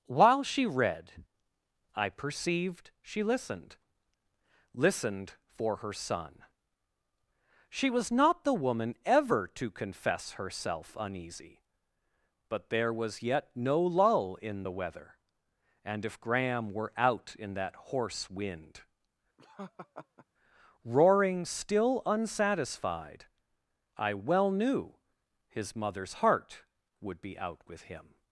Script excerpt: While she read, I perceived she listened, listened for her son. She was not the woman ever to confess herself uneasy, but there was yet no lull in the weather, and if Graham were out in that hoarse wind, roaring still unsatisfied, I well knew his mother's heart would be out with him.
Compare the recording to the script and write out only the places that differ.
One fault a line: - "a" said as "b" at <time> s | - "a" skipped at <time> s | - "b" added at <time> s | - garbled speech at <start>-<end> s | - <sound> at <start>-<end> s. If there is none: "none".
- laugh at 19.4-20.3 s